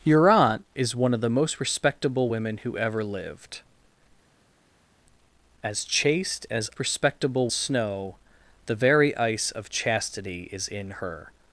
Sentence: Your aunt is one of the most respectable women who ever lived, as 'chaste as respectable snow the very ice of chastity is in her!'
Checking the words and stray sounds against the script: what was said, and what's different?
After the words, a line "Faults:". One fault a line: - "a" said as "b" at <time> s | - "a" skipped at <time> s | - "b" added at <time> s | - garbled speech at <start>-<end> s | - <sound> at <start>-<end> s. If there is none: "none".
Your aunt is one of the most respectable women who ever lived, as 'chaste as respectable snow the very ice of chastity is in her!'
Faults:
none